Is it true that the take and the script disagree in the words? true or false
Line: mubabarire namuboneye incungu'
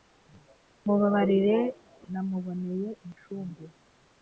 false